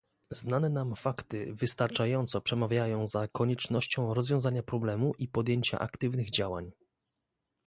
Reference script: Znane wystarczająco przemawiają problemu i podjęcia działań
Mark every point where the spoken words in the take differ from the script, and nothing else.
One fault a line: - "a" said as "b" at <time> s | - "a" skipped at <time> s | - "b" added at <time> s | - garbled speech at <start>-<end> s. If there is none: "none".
- "nam fakty" added at 0.7 s
- "za koniecznością rozwiązania" added at 3.1 s
- "aktywnych" added at 5.8 s